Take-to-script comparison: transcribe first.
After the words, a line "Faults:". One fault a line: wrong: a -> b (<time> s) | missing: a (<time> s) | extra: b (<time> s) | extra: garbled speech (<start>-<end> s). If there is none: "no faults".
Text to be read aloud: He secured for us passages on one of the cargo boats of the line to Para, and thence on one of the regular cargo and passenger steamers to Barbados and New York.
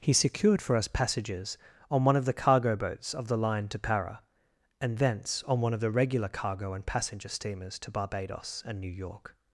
He secured for us passages on one of the cargo boats of the line to Para, and thence on one of the regular cargo and passenger steamers to Barbados and New York.
Faults:
no faults